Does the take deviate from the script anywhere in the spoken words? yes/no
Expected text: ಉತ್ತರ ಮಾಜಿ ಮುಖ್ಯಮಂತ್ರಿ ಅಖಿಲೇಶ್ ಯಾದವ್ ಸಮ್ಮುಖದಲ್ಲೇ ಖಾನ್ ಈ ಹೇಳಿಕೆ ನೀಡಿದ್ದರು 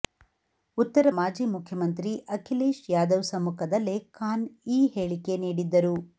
no